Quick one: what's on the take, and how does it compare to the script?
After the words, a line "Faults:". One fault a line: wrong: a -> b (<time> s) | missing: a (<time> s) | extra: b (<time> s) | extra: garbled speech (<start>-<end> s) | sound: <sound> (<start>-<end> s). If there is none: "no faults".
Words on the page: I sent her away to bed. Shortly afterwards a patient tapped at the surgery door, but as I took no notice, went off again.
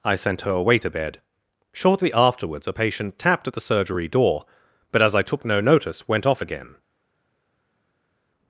I sent her away to bed. Shortly afterwards a patient tapped at the surgery door, but as I took no notice, went off again.
Faults:
no faults